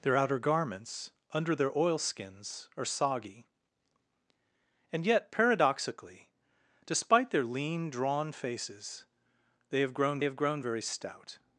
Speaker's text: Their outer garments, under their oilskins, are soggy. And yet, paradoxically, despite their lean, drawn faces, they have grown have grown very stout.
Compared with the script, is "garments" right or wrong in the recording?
right